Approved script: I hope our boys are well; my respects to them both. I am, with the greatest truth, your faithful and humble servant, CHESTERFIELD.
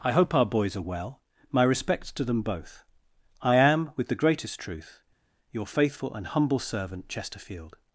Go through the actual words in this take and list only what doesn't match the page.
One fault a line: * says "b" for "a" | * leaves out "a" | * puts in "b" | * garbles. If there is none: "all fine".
all fine